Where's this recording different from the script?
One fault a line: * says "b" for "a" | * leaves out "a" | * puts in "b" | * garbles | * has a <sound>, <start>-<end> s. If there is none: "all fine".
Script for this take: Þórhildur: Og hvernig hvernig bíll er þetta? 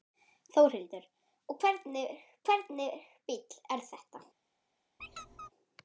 * has a squeak, 5.0-5.5 s